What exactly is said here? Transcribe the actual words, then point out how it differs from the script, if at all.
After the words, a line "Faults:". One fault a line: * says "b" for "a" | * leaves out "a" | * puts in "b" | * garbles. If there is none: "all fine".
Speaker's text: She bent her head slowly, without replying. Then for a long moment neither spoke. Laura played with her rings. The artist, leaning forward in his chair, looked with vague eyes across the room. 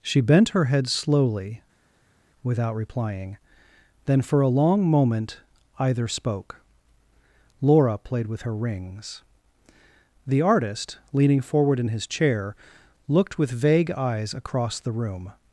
She bent her head slowly, without replying. Then for a long moment either spoke. Laura played with her rings. The artist, leaning forward in his chair, looked with vague eyes across the room.
Faults:
* says "either" for "neither"